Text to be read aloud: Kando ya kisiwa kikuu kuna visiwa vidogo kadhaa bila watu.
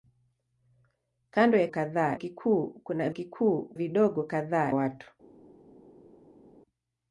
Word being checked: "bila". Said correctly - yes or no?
no